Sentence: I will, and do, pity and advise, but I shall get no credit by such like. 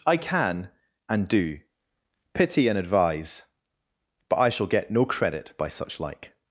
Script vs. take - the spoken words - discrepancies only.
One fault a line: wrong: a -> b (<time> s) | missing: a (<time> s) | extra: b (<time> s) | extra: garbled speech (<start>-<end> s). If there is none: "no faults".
wrong: will -> can (0.2 s)